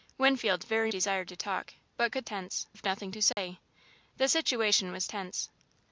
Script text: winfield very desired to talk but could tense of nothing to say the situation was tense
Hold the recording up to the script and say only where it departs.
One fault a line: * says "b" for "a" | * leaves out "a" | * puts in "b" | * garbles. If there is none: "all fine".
all fine